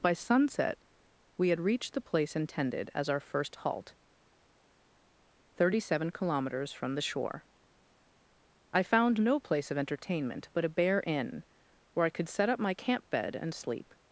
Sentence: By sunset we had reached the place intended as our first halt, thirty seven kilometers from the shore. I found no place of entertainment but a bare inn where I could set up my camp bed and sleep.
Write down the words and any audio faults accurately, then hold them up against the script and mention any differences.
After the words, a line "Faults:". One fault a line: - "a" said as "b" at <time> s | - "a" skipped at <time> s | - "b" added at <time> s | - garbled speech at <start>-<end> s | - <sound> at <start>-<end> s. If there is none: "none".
By sunset we had reached the place intended as our first halt, thirty seven kilometers from the shore. I found no place of entertainment but a bare inn where I could set up my camp bed and sleep.
Faults:
none